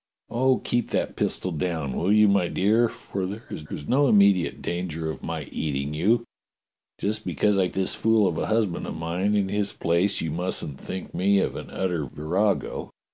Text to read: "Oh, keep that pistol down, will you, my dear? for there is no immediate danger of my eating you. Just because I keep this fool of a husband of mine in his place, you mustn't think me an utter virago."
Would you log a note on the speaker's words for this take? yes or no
yes